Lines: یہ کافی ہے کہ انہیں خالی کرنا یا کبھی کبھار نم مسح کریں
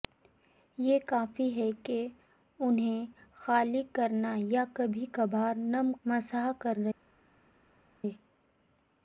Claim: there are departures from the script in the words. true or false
false